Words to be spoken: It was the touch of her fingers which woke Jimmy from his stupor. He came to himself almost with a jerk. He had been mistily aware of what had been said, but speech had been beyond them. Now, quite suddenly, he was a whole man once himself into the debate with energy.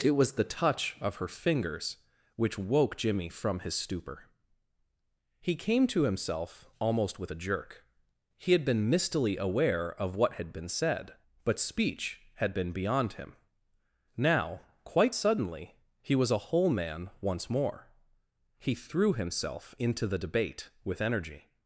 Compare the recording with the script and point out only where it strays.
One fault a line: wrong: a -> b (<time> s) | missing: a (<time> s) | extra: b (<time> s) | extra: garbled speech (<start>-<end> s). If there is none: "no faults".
wrong: them -> him (13.1 s)
extra: more He threw (17.5 s)